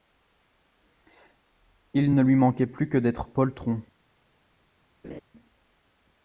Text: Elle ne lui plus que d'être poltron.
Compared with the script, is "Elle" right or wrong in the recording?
wrong